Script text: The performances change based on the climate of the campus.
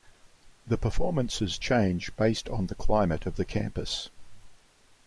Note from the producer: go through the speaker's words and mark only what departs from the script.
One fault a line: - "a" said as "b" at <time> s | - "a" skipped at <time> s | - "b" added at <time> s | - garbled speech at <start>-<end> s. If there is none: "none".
none